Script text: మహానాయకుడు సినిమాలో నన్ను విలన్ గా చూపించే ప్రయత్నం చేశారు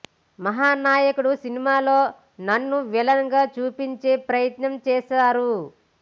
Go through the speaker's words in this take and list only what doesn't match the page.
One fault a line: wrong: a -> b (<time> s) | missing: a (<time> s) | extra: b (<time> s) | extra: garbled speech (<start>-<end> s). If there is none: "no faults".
no faults